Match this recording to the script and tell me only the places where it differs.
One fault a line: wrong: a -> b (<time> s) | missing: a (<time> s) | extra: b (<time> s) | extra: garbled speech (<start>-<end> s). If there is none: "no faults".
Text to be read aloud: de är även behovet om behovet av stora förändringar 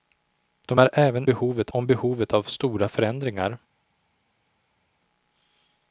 no faults